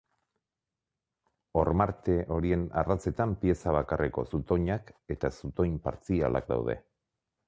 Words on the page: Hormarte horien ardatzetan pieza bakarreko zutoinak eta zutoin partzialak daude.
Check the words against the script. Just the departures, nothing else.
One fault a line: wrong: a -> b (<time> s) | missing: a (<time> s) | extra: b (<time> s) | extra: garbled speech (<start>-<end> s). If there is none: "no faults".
no faults